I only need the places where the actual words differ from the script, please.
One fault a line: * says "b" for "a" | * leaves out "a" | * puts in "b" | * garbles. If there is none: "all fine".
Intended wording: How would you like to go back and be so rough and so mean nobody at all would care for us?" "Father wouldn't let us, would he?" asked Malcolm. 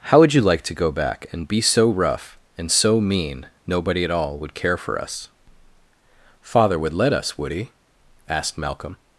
* says "would" for "wouldn't"